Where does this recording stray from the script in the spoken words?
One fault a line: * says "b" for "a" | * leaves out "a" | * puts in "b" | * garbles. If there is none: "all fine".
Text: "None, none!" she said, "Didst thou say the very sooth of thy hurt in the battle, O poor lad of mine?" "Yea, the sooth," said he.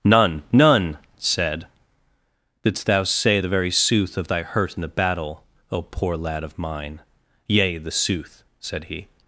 * leaves out "she"